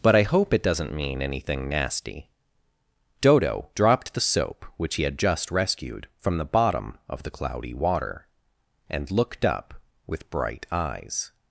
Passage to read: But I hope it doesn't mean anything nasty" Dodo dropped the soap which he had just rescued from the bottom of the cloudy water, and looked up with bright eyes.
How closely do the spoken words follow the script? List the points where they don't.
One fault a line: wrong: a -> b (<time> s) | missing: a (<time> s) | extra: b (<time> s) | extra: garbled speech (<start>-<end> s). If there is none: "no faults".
no faults